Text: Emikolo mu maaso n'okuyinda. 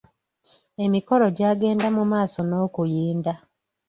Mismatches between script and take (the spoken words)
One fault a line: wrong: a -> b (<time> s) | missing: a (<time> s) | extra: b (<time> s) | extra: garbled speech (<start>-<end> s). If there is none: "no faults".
extra: gyagenda (1.4 s)